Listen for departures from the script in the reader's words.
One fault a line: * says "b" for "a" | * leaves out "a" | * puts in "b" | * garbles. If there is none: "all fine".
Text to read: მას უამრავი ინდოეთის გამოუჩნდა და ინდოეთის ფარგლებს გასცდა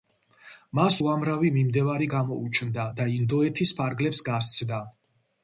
* says "მიმდევარი" for "ინდოეთის"